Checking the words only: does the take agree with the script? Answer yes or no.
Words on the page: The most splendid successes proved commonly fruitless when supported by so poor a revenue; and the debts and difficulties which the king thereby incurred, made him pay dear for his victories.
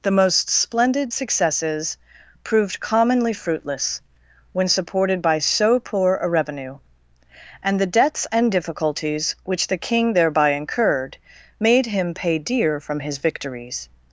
no